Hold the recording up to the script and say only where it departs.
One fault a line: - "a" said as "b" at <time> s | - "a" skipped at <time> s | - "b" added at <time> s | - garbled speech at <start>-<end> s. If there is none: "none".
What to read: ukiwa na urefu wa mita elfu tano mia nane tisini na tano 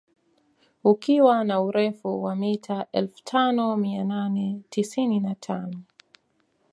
none